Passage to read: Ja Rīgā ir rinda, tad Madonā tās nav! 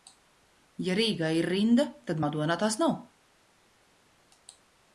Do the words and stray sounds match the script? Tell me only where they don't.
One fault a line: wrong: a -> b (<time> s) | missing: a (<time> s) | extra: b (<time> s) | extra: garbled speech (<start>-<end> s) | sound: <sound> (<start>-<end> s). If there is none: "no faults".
no faults